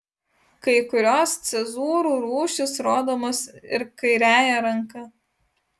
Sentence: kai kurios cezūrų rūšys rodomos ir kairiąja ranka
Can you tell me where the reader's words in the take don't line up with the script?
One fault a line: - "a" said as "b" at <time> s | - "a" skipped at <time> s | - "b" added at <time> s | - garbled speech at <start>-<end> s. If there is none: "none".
none